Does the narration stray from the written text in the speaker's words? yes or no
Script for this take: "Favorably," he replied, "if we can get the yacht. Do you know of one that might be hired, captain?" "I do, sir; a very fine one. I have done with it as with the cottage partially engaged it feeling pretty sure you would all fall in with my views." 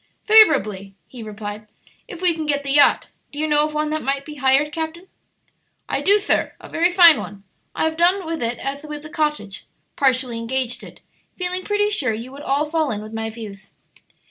no